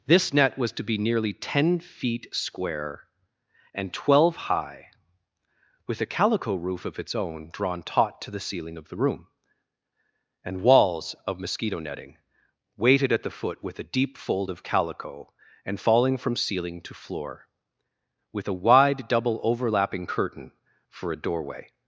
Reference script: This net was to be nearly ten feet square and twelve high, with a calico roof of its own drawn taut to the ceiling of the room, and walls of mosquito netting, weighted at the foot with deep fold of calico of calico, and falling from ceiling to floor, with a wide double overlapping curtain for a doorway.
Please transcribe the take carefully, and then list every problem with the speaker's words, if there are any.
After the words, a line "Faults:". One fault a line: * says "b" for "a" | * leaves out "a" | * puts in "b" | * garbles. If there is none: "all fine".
This net was to be nearly ten feet square and twelve high, with a calico roof of its own drawn taut to the ceiling of the room, and walls of mosquito netting, weighted at the foot with a deep fold of calico, and falling from ceiling to floor, with a wide double overlapping curtain for a doorway.
Faults:
* puts in "a"
* leaves out "of calico"